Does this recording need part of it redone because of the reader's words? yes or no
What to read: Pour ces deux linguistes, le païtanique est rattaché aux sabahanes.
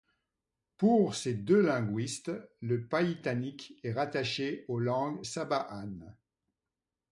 yes